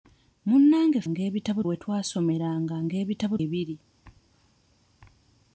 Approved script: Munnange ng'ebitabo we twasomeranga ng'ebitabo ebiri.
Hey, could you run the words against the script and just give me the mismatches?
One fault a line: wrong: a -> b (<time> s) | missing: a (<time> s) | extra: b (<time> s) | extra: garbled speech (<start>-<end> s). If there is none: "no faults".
no faults